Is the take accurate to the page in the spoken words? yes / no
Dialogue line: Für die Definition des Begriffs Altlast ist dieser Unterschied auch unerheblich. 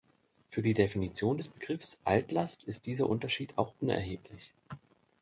yes